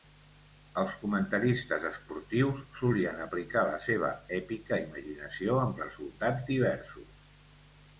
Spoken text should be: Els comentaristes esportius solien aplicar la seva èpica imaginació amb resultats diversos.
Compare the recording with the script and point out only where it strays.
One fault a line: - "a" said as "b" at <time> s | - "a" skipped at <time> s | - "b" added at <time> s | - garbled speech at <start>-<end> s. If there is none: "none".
none